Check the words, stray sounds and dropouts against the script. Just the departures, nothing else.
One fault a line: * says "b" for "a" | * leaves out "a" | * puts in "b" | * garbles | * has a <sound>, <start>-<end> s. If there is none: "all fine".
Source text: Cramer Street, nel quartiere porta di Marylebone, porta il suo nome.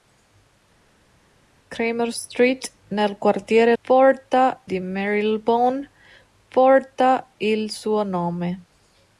all fine